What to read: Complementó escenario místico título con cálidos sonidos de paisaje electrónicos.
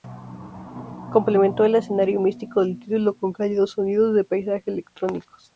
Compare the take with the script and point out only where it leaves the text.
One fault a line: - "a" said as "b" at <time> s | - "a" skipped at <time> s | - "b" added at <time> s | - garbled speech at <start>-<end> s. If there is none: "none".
- "el" added at 1.6 s
- "del" added at 2.6 s